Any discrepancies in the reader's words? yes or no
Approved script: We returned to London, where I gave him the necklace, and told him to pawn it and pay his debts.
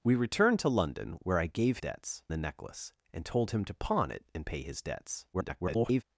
yes